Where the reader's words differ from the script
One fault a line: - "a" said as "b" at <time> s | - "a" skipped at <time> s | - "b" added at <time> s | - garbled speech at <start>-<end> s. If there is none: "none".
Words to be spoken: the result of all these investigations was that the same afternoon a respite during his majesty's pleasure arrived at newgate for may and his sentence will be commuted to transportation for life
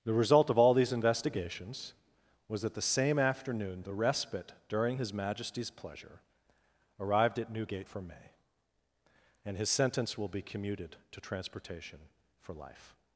- "a" said as "the" at 3.8 s